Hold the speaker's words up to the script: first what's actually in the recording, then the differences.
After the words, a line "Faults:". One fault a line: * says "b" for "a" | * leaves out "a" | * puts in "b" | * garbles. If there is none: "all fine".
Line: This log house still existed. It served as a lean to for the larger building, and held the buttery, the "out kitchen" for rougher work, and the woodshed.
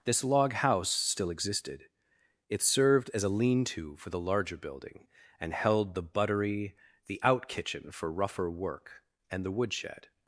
This log house still existed. It served as a lean to for the larger building, and held the buttery, the "out kitchen" for rougher work, and the woodshed.
Faults:
all fine